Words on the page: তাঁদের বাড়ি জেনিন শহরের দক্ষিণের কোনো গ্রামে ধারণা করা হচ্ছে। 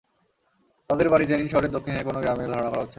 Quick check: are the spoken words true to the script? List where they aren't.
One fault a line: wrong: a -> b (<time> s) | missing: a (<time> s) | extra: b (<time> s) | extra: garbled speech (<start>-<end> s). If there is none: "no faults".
no faults